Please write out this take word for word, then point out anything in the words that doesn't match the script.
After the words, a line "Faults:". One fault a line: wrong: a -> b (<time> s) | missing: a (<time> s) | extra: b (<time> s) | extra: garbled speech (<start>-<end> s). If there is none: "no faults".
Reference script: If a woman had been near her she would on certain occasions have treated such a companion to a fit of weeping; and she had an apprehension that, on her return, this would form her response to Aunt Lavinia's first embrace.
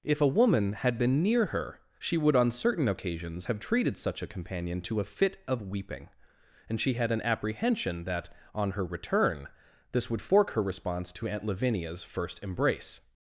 If a woman had been near her she would on certain occasions have treated such a companion to a fit of weeping; and she had an apprehension that, on her return, this would fork her response to Aunt Lavinia's first embrace.
Faults:
wrong: form -> fork (10.2 s)